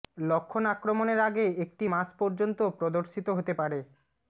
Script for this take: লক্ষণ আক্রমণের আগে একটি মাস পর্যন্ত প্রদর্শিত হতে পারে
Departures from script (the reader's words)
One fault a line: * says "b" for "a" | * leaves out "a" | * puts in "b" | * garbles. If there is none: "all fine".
all fine